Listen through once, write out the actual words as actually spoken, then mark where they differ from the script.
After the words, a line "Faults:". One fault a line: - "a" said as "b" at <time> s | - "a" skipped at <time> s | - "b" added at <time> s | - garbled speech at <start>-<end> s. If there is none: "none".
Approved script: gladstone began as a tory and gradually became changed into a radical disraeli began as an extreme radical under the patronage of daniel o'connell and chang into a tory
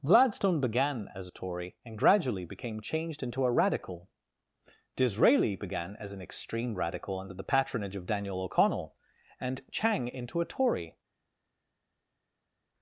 gladstone began as a tory and gradually became changed into a radical disraeli began as an extreme radical under the patronage of daniel o'connell and chang into a tory
Faults:
none